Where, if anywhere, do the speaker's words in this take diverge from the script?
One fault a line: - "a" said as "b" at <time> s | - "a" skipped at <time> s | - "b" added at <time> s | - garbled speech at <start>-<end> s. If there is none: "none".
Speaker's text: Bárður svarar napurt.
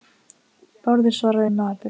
none